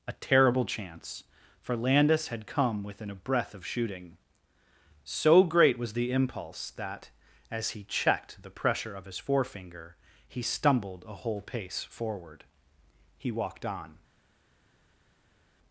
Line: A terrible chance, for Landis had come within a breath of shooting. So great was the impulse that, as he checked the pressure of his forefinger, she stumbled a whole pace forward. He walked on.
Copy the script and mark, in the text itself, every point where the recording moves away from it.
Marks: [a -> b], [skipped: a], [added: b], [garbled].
A terrible chance, for Landis had come within a breath of shooting. So great was the impulse that, as he checked the pressure of his forefinger, [she -> he] stumbled a whole pace forward. He walked on.